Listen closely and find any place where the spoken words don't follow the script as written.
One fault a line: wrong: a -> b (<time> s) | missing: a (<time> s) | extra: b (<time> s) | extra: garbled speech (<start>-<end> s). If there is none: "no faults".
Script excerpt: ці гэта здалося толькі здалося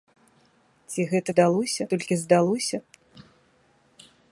no faults